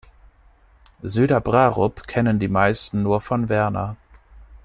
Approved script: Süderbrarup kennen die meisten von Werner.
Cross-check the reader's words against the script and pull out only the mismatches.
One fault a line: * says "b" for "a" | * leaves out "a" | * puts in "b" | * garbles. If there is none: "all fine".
* puts in "nur"